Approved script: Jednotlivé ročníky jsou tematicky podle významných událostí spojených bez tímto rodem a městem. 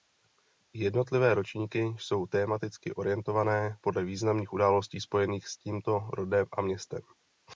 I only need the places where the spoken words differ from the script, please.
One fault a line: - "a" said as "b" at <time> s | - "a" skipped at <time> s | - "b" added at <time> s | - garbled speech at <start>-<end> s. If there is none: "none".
- "orientované" added at 2.9 s
- "bez" said as "s" at 5.5 s